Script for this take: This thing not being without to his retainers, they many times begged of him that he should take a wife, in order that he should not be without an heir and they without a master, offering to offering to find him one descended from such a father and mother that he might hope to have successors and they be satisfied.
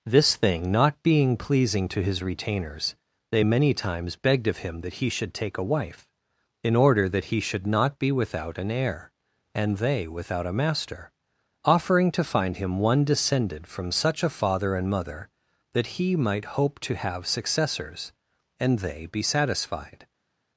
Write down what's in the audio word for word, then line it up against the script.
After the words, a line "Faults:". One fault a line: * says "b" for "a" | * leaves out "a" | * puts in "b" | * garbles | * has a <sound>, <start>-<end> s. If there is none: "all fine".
This thing not being pleasing to his retainers, they many times begged of him that he should take a wife, in order that he should not be without an heir and they without a master, offering to find him one descended from such a father and mother that he might hope to have successors and they be satisfied.
Faults:
* says "pleasing" for "without"
* leaves out "offering to"